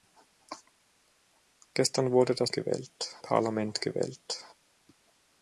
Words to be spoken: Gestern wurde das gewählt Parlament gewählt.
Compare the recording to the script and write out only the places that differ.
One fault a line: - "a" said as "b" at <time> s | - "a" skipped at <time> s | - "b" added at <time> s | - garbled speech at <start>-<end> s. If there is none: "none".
none